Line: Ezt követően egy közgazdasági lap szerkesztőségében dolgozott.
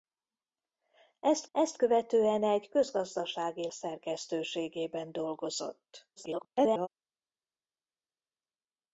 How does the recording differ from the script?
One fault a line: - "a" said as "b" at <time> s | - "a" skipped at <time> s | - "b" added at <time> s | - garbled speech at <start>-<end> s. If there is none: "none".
- "ezt" added at 1.5 s
- "lap" skipped at 3.7 s
- garbled speech at 6.2-6.9 s